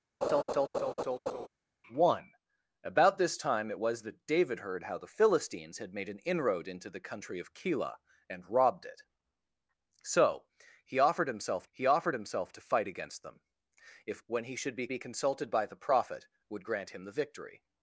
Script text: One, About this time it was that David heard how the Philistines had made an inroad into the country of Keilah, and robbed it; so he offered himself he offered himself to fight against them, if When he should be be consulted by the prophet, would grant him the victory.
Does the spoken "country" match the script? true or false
true